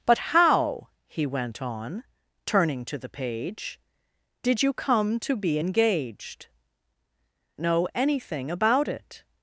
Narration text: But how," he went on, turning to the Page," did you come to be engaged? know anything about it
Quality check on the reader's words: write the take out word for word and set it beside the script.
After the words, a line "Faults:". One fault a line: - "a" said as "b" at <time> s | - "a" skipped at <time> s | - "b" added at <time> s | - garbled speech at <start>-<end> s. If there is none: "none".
But how," he went on, turning to the Page," did you come to be engaged? know anything about it
Faults:
none